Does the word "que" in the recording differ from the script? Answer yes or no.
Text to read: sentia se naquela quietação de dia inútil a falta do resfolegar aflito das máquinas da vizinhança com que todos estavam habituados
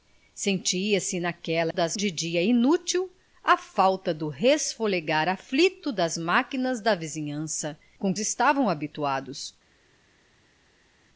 yes